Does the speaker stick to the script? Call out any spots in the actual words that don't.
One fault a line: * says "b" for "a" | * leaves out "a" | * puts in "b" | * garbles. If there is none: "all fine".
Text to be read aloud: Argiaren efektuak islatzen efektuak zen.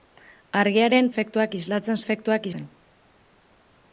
all fine